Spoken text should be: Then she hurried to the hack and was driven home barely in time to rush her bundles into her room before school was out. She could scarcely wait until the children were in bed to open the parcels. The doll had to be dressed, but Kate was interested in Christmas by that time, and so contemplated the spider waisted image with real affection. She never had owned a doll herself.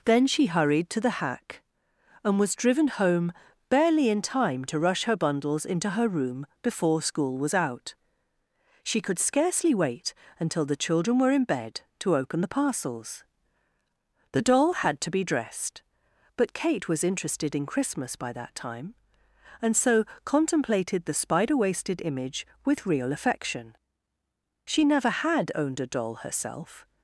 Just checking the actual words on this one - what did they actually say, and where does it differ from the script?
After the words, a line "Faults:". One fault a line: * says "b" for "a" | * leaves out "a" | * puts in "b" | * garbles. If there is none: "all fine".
Then she hurried to the hack and was driven home barely in time to rush her bundles into her room before school was out. She could scarcely wait until the children were in bed to open the parcels. The doll had to be dressed, but Kate was interested in Christmas by that time, and so contemplated the spider waisted image with real affection. She never had owned a doll herself.
Faults:
all fine